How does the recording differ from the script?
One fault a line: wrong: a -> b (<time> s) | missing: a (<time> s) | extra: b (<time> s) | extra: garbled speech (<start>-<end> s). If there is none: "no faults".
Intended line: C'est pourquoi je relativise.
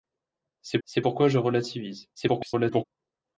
extra: c'est (0.9 s)
extra: garbled speech (2.2-2.8 s)